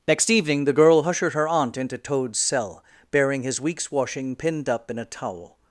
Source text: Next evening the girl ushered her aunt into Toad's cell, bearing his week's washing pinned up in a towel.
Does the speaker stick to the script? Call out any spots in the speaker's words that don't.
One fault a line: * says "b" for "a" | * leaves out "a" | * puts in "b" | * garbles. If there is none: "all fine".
all fine